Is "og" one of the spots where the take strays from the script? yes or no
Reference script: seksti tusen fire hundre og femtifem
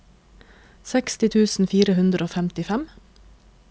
no